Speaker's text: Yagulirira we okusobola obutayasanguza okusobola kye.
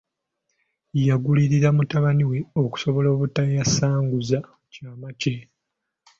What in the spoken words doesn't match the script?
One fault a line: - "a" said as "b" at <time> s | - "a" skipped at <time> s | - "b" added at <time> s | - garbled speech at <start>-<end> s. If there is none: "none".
- "mutabani" added at 1.8 s
- "okusobola" said as "kyama" at 4.7 s